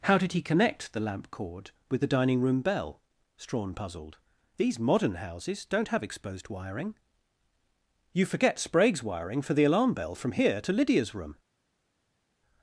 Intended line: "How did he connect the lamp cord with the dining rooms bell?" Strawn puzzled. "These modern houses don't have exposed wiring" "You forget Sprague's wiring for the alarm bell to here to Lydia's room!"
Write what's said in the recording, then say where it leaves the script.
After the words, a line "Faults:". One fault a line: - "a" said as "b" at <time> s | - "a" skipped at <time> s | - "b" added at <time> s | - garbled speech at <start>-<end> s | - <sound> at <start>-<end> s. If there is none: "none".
"How did he connect the lamp cord with the dining room bell?" Strawn puzzled. "These modern houses don't have exposed wiring" "You forget Sprague's wiring for the alarm bell from here to Lydia's room!"
Faults:
- "rooms" said as "room" at 2.4 s
- "to" said as "from" at 10.1 s